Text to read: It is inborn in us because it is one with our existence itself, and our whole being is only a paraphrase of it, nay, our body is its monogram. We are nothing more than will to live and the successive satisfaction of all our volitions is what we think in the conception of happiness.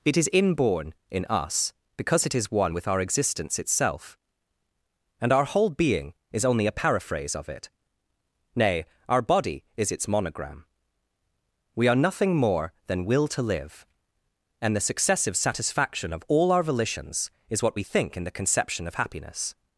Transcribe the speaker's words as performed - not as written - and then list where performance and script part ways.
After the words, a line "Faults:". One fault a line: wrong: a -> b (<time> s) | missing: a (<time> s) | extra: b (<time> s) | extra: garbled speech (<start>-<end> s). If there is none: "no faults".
It is inborn in us because it is one with our existence itself, and our whole being is only a paraphrase of it, nay, our body is its monogram. We are nothing more than will to live and the successive satisfaction of all our volitions is what we think in the conception of happiness.
Faults:
no faults